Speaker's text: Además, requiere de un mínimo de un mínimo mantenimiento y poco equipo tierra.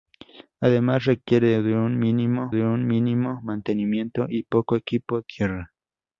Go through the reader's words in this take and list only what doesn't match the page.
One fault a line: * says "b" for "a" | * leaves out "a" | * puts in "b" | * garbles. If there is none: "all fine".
all fine